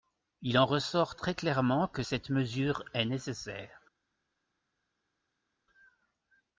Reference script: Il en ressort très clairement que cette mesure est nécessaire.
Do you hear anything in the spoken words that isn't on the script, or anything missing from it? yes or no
no